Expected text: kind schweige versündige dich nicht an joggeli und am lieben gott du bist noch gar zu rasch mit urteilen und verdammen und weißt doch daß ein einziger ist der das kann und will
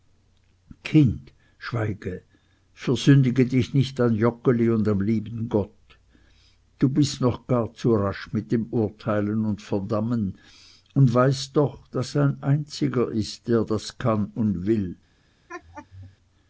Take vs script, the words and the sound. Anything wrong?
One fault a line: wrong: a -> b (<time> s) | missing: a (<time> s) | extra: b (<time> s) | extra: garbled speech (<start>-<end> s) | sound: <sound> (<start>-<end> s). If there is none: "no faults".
extra: dem (8.5 s)
sound: laugh (15.5-16.2 s)